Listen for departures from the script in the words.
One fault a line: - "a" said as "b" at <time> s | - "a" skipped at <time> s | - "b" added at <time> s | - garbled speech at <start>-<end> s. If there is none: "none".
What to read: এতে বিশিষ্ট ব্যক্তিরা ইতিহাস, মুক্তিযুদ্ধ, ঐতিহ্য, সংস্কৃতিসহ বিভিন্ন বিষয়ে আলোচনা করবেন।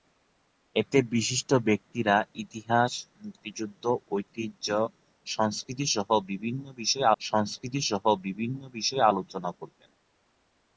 - "সংস্কৃতিসহ বিভিন্ন বিষয়ে" added at 7.2 s